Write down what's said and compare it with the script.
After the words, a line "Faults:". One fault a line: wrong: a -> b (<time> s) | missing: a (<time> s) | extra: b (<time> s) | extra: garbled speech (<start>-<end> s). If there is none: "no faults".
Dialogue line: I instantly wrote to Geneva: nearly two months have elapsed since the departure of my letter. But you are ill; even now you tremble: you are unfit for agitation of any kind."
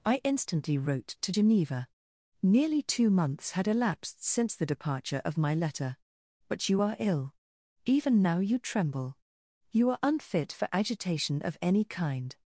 I instantly wrote to Geneva: nearly two months had elapsed since the departure of my letter. But you are ill; even now you tremble: you are unfit for agitation of any kind."
Faults:
wrong: have -> had (3.5 s)